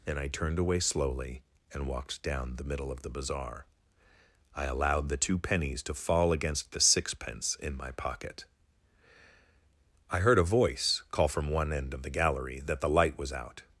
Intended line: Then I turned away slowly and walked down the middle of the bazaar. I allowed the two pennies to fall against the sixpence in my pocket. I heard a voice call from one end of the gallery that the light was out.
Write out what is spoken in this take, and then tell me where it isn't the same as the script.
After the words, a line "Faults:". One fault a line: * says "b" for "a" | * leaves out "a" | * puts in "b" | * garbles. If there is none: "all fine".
And I turned away slowly and walked down the middle of the bazaar. I allowed the two pennies to fall against the sixpence in my pocket. I heard a voice call from one end of the gallery that the light was out.
Faults:
* says "And" for "Then"